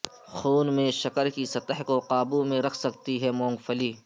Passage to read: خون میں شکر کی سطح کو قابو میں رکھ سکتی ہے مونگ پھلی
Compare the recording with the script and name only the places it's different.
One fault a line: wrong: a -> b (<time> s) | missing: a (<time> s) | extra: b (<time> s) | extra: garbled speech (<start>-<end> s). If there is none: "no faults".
no faults